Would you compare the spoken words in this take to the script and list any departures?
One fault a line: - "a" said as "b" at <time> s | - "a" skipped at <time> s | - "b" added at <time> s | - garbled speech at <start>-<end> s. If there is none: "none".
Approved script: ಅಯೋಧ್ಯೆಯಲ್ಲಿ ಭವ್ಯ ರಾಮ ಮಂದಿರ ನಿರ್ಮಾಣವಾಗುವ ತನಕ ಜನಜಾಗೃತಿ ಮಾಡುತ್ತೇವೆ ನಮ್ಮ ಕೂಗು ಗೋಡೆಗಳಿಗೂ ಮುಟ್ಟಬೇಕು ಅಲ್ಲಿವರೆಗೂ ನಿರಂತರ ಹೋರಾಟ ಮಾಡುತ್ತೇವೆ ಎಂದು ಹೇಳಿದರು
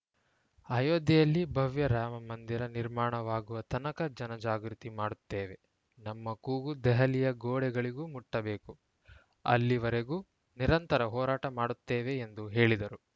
- "ದೆಹಲಿಯ" added at 6.8 s